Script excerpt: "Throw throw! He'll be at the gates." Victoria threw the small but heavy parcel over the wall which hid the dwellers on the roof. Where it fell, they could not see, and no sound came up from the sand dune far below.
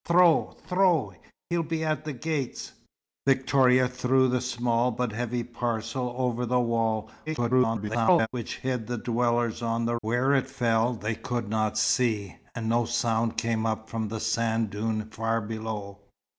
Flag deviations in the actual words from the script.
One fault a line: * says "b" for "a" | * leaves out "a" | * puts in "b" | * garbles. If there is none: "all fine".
* garbles
* leaves out "roof"